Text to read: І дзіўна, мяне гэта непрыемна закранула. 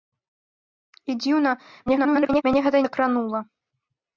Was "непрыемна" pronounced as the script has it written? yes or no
no